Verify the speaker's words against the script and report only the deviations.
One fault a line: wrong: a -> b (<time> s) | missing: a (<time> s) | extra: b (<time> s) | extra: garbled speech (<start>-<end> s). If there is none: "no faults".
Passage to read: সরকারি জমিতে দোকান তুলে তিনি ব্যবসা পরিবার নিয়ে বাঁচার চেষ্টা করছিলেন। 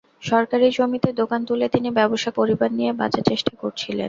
no faults